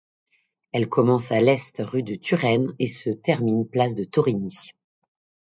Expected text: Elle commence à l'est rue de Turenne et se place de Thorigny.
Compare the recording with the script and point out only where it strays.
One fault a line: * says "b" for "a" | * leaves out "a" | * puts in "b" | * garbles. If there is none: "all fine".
* puts in "termine"